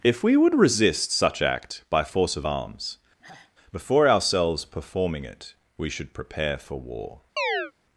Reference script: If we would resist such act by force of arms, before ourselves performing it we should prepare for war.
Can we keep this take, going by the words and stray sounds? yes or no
no